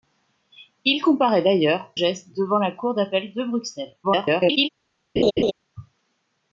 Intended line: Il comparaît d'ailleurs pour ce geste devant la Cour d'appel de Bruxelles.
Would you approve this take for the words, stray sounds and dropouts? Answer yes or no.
no